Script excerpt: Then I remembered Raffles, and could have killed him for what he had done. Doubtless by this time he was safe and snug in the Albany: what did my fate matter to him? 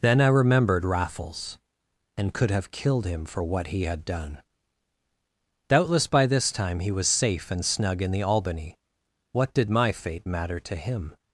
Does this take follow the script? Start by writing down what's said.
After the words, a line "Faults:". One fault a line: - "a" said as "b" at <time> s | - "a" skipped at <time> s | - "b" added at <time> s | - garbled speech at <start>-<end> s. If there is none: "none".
Then I remembered Raffles, and could have killed him for what he had done. Doubtless by this time he was safe and snug in the Albany: what did my fate matter to him?
Faults:
none